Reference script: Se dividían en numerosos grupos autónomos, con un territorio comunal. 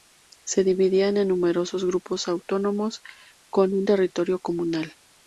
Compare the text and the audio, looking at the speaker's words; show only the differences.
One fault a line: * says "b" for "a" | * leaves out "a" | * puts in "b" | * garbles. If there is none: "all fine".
all fine